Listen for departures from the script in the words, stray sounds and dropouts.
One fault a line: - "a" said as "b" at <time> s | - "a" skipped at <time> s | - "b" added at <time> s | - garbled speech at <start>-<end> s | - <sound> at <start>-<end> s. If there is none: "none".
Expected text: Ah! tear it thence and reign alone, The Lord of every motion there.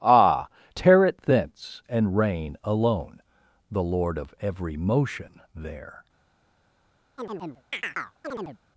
- chirp at 7.2-8.6 s